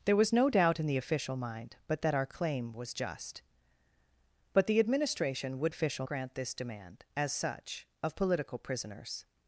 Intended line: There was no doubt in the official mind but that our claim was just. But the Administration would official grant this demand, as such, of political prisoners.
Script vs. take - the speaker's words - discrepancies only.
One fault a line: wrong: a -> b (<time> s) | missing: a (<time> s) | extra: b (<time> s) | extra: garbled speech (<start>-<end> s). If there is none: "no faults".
no faults